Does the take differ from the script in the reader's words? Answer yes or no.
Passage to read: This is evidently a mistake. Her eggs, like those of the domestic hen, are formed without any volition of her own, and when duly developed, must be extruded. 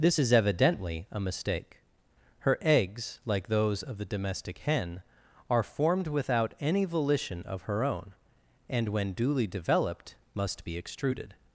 no